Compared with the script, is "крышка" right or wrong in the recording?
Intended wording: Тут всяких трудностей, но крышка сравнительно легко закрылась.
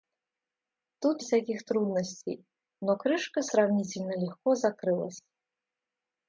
right